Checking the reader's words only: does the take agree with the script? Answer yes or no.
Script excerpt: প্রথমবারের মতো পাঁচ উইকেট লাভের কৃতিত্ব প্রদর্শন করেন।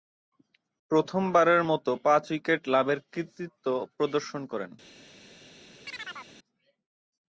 yes